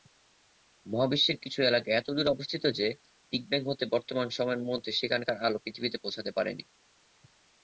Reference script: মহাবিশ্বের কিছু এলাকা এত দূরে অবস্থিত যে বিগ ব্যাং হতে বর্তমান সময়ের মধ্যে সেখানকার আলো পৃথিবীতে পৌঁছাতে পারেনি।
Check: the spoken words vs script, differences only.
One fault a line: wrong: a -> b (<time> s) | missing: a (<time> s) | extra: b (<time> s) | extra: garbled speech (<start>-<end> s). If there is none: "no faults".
no faults